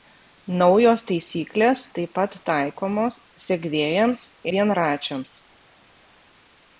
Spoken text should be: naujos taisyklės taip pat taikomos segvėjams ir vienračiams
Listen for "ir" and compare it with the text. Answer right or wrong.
wrong